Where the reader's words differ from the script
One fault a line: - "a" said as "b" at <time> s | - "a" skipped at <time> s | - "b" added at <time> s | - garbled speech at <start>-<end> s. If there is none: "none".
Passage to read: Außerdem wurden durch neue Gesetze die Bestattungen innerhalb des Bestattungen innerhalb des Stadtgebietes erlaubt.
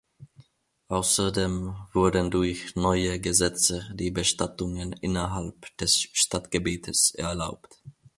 - "Bestattungen innerhalb des" skipped at 6.1 s